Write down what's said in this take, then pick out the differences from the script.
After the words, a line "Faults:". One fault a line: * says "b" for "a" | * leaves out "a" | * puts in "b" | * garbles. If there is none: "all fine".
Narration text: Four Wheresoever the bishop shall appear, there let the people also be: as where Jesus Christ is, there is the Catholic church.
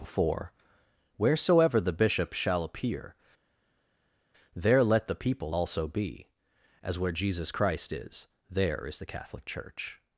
Four Wheresoever the bishop shall appear, there let the people also be: as where Jesus Christ is, there is the Catholic church.
Faults:
all fine